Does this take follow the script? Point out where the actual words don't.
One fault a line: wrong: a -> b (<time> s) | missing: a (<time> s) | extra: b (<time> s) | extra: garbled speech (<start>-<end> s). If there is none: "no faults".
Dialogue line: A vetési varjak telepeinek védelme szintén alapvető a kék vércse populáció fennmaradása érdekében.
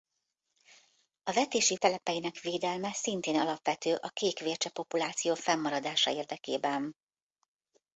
missing: varjak (1.8 s)